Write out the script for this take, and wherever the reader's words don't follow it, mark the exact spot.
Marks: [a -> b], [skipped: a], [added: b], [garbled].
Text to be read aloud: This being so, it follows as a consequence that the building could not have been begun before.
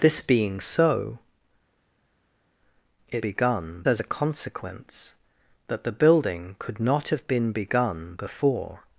This being so, it [follows -> begun] as a consequence that the building could not have been begun before.